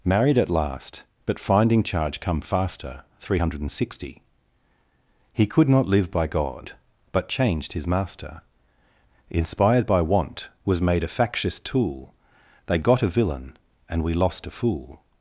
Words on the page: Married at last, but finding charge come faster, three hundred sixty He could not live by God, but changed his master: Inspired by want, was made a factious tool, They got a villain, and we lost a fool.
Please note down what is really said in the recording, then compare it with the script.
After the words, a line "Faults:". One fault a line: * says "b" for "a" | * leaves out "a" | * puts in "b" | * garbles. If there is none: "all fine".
Married at last, but finding charge come faster, three hundred sixty He could not live by God, but changed his master: Inspired by want, was made a factious tool, They got a villain, and we lost a fool.
Faults:
all fine